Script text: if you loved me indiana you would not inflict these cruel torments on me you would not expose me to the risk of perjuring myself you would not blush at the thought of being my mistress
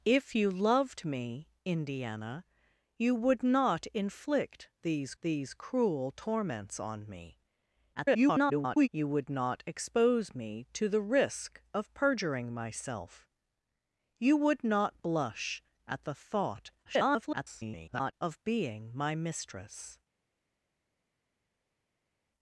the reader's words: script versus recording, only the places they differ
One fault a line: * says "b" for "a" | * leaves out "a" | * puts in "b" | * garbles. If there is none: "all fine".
* puts in "these"
* garbles
* garbles